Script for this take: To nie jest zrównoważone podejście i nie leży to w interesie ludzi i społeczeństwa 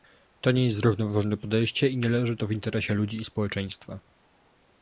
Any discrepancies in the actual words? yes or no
no